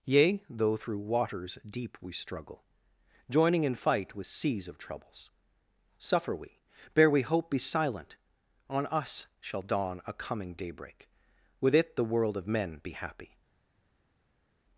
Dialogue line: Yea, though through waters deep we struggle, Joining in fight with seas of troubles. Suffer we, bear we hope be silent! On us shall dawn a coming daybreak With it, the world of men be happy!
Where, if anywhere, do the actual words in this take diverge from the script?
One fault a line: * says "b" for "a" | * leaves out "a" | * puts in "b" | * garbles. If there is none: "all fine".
all fine